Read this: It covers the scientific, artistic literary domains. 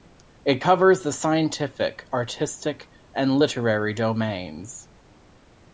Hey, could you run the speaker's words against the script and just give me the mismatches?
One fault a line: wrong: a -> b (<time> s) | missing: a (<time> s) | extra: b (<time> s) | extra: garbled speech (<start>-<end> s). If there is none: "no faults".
extra: and (3.1 s)